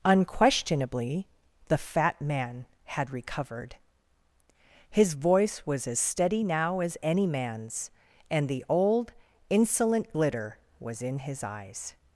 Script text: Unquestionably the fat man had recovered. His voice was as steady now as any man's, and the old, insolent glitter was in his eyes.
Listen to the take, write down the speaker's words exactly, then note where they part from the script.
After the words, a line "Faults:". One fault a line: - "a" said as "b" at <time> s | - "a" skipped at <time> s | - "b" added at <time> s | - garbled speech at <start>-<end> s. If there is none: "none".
Unquestionably the fat man had recovered. His voice was as steady now as any man's, and the old, insolent glitter was in his eyes.
Faults:
none